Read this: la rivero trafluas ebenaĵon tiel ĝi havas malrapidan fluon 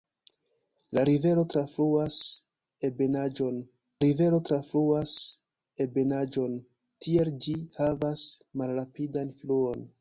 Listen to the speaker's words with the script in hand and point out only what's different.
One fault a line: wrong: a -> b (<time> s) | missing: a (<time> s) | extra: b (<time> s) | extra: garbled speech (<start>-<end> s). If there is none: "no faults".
extra: rivero trafluas ebenaĵon (4.0 s)